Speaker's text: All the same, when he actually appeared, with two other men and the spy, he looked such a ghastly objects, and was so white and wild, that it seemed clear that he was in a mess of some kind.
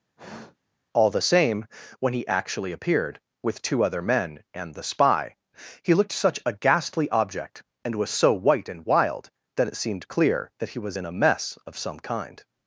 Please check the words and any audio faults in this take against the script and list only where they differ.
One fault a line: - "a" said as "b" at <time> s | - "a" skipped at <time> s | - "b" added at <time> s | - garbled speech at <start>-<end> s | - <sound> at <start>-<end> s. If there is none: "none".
- sigh at 0.1-0.8 s
- "objects" said as "object" at 7.1 s